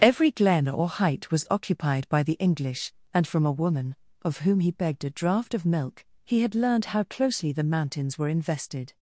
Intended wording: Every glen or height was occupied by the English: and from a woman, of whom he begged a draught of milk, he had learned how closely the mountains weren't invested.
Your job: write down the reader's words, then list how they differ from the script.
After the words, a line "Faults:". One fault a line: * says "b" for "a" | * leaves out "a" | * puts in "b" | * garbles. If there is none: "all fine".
Every glen or height was occupied by the English: and from a woman, of whom he begged a draught of milk, he had learned how closely the mountains were invested.
Faults:
* says "were" for "weren't"